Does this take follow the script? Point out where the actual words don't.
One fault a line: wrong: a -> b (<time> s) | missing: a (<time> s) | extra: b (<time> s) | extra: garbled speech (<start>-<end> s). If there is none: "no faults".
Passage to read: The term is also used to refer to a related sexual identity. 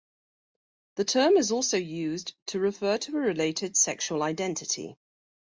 no faults